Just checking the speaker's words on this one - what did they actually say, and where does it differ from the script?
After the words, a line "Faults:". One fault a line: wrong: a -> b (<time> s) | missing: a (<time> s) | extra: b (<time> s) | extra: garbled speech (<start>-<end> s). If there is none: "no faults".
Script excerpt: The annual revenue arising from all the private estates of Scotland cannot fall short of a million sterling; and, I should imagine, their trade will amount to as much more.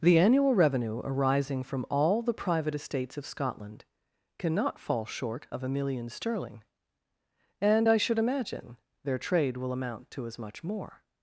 The annual revenue arising from all the private estates of Scotland cannot fall short of a million sterling; and, I should imagine, their trade will amount to as much more.
Faults:
no faults